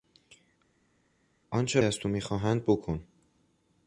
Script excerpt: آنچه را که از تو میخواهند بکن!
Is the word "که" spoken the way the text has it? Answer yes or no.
no